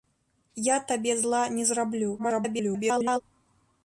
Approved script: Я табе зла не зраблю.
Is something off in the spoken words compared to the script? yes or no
yes